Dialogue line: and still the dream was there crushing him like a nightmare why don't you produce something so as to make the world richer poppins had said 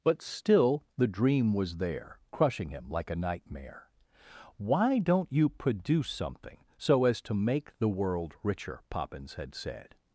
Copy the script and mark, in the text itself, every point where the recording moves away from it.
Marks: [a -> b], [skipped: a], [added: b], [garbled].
[and -> but] still the dream was there crushing him like a nightmare why don't you produce something so as to make the world richer poppins had said